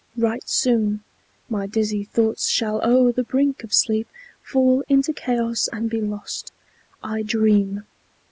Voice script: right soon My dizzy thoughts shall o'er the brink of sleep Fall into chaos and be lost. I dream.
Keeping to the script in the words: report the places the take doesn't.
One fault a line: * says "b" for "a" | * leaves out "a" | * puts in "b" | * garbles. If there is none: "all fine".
all fine